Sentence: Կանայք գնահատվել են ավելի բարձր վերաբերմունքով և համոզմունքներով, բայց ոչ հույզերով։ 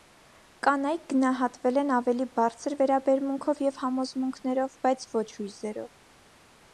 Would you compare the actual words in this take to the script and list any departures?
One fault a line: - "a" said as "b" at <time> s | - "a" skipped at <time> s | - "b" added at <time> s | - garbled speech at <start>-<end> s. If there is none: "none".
none